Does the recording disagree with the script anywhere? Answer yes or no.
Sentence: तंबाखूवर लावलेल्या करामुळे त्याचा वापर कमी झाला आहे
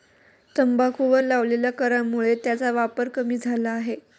no